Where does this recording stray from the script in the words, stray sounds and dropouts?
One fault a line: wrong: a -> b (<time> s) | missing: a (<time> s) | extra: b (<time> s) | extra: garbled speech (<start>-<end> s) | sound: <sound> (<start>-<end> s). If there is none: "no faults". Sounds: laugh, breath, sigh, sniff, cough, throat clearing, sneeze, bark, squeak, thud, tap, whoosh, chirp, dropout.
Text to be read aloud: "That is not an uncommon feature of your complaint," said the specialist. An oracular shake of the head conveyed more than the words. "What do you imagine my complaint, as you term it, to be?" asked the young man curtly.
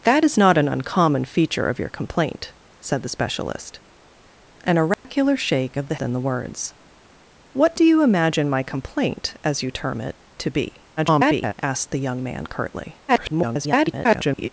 sound: dropout (4.9-5.0 s)
missing: head conveyed more (6.0 s)
extra: garbled speech (11.0-11.5 s)
extra: garbled speech (13.1-14.5 s)